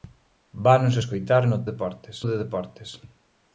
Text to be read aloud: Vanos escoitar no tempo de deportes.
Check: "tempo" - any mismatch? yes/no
yes